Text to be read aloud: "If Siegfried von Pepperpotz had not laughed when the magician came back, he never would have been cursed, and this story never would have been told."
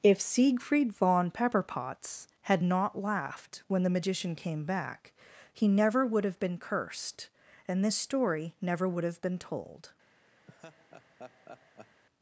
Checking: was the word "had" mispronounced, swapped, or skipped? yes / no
no